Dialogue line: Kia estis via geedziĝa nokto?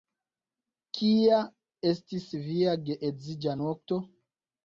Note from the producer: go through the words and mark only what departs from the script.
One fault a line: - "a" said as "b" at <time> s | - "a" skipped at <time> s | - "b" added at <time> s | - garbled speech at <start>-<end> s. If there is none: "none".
none